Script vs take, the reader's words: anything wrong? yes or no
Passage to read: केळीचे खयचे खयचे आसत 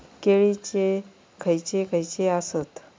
no